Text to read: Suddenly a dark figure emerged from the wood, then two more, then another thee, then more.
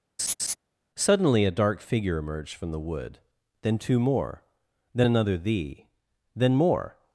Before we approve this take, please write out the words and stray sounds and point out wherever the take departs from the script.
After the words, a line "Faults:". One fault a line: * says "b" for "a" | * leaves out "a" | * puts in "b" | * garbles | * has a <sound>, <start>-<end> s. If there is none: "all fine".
Suddenly a dark figure emerged from the wood, then two more, then another thee, then more.
Faults:
* has a laugh, 0.2-0.6 s